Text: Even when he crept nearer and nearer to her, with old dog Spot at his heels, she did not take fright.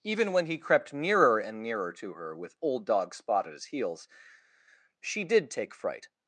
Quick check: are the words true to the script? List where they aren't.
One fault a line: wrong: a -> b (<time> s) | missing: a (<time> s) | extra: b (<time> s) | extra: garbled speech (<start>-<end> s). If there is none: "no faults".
missing: not (5.5 s)